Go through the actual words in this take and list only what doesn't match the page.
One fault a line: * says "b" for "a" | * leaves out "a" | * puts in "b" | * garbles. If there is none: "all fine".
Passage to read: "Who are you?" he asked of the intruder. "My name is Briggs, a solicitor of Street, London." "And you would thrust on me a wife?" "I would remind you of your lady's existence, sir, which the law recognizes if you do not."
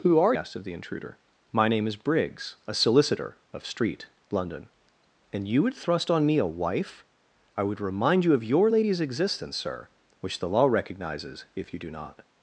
* leaves out "you he"